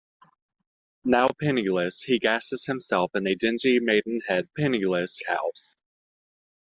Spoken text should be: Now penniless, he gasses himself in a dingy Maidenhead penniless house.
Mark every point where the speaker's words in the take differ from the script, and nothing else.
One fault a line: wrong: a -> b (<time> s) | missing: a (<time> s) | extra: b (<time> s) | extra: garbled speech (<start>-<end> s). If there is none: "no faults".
no faults